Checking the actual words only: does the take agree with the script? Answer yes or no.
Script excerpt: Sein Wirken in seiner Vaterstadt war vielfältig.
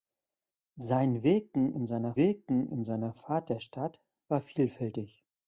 no